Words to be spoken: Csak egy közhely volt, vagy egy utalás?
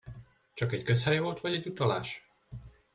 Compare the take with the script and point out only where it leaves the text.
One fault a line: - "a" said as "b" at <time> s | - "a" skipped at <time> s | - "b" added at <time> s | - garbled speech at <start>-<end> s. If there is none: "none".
none